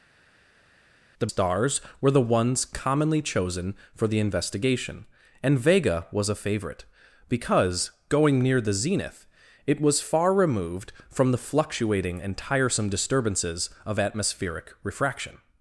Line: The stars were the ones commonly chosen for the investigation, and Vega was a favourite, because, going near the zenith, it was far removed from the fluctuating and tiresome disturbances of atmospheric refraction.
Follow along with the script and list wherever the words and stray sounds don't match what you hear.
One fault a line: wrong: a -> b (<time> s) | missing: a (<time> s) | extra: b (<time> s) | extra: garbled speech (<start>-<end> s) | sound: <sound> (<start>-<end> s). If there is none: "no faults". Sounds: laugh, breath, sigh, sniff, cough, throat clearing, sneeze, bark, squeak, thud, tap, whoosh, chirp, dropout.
no faults